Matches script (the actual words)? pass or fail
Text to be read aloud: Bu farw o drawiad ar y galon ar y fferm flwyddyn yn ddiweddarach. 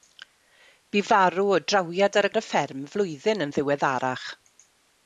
fail